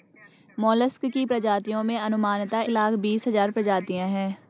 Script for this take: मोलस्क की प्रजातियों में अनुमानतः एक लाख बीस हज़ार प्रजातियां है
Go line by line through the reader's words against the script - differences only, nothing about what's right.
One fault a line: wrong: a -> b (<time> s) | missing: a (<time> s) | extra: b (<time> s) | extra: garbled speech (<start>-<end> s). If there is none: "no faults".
missing: एक (2.6 s)